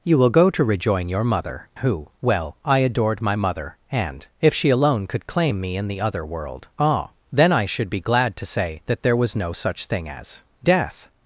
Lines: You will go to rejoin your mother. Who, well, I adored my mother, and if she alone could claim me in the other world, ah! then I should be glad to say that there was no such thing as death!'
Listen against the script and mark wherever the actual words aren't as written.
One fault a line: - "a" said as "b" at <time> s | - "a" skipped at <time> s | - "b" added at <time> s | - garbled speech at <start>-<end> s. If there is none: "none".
none